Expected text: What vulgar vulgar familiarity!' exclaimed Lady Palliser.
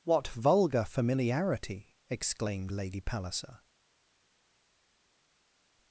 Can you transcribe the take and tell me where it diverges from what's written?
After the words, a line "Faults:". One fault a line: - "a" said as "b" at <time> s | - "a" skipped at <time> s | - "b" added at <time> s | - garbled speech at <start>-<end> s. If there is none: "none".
What vulgar familiarity!' exclaimed Lady Palliser.
Faults:
- "vulgar" skipped at 0.8 s